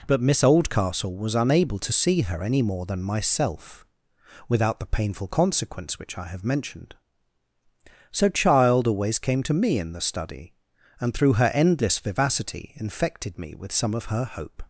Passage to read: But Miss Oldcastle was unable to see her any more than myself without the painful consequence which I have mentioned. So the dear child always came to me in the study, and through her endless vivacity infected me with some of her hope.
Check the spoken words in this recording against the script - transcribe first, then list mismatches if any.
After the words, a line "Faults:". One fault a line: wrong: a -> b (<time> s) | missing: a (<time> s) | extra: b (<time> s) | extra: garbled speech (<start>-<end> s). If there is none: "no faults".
But Miss Oldcastle was unable to see her any more than myself without the painful consequence which I have mentioned. So child always came to me in the study, and through her endless vivacity infected me with some of her hope.
Faults:
missing: the dear (8.3 s)